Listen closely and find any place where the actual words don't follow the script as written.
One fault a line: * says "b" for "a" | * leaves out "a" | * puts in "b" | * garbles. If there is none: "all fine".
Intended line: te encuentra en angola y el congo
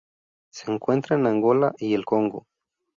* says "se" for "te"